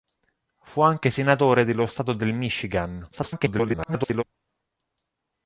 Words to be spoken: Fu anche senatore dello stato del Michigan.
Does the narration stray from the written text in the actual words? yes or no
yes